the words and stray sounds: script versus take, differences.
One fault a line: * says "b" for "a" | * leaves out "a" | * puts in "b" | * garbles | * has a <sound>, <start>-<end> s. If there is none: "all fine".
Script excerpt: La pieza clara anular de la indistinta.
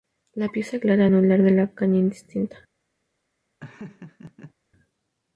* puts in "caña"
* has a laugh, 3.6-4.5 s